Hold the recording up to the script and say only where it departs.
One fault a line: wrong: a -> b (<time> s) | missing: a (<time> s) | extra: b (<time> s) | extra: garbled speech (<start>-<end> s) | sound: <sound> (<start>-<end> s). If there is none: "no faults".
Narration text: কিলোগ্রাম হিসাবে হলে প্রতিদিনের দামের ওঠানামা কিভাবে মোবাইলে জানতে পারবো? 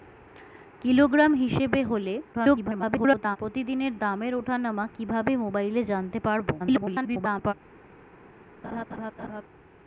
extra: garbled speech (2.3-3.4 s)
extra: garbled speech (6.6-7.5 s)
sound: laugh (8.6-9.4 s)